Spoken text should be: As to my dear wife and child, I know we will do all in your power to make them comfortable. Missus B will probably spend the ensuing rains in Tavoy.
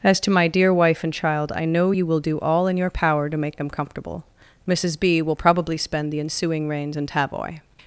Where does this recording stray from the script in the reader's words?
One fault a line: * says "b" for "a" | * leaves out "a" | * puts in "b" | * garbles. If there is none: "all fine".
* says "you" for "we"